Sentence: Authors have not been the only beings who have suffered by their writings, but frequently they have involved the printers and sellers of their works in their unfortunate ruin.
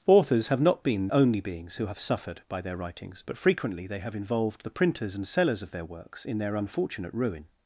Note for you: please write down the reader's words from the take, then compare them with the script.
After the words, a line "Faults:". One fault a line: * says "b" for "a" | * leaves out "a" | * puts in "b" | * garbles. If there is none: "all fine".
Authors have not been only beings who have suffered by their writings, but frequently they have involved the printers and sellers of their works in their unfortunate ruin.
Faults:
* leaves out "the"